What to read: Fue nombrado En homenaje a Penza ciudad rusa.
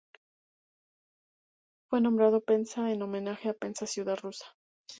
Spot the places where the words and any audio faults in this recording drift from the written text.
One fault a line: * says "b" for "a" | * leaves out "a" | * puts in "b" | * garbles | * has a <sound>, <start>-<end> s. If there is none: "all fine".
* puts in "Penza"